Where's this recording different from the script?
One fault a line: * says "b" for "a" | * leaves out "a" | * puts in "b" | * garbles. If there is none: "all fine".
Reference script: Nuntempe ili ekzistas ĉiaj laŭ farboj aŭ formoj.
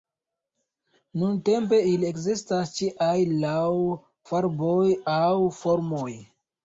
all fine